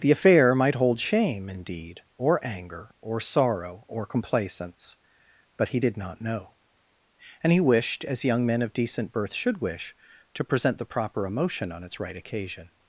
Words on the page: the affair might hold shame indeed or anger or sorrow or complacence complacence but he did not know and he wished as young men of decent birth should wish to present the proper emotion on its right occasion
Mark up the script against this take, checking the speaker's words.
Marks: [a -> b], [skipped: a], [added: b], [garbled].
the affair might hold shame indeed or anger or sorrow or complacence [skipped: complacence] but he did not know and he wished as young men of decent birth should wish to present the proper emotion on its right occasion